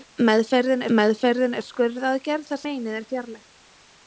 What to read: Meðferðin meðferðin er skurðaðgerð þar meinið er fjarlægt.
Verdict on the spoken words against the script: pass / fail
pass